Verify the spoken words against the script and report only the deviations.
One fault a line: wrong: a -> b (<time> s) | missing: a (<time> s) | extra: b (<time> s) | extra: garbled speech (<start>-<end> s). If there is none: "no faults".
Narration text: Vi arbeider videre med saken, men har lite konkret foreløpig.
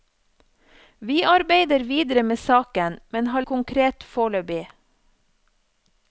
missing: lite (3.4 s)